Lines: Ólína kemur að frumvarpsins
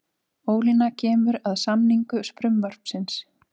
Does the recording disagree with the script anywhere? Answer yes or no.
yes